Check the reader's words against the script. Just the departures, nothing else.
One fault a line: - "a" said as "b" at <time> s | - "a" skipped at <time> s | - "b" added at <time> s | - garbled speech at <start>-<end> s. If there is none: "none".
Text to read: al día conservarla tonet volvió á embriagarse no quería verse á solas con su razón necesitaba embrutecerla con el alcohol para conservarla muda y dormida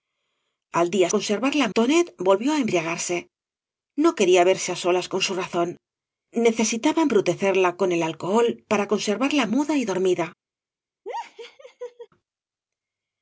none